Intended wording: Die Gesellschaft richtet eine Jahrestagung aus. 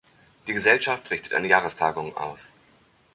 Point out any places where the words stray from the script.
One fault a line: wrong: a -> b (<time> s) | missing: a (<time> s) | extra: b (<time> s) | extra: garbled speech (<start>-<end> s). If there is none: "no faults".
no faults